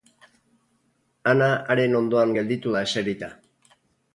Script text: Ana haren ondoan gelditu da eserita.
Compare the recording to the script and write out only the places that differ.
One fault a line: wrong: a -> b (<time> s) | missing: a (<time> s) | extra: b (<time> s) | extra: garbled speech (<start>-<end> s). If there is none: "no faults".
no faults